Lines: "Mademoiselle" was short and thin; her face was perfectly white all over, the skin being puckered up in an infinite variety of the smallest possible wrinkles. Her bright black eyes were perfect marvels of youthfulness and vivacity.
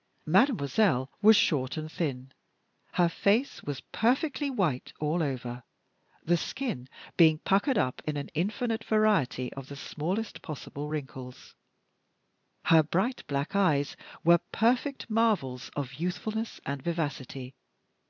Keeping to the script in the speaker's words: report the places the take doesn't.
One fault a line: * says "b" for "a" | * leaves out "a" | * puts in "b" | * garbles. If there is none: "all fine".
all fine